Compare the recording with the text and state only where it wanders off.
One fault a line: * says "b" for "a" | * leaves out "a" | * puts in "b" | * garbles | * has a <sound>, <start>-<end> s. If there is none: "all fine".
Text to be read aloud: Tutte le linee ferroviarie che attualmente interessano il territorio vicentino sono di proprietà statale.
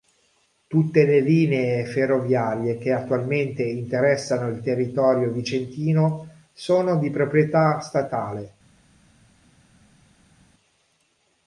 all fine